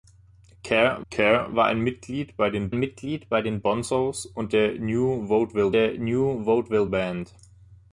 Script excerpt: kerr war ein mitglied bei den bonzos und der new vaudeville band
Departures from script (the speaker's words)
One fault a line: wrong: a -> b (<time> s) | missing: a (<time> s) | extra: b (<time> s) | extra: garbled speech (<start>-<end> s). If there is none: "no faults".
extra: kerr (1.1 s)
extra: mitglied bei den (2.7 s)
extra: der new vaudeville (5.7 s)